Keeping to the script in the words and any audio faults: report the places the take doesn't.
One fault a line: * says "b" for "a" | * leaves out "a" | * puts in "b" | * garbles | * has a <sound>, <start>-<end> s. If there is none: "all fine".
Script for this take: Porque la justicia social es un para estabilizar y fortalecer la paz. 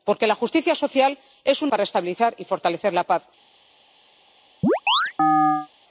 * has a chirp, 4.6-5.7 s